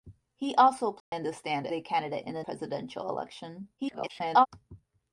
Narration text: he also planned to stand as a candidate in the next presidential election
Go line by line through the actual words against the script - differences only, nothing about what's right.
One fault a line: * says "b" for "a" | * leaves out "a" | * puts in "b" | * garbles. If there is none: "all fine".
* leaves out "as"
* leaves out "next"
* garbles